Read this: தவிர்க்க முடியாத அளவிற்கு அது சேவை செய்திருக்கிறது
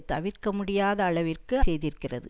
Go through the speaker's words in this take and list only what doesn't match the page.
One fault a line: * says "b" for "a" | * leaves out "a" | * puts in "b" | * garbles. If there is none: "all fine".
* leaves out "அது சேவை"